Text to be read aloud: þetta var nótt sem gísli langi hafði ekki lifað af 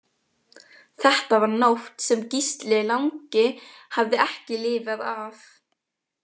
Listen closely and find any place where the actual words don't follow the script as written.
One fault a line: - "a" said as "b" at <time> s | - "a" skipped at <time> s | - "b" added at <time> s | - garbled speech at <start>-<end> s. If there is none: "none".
none